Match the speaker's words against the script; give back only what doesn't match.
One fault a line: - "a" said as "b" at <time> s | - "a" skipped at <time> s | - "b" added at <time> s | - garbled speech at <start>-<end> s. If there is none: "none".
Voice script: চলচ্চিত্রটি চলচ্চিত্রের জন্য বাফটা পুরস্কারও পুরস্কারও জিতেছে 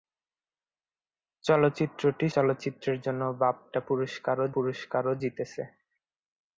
none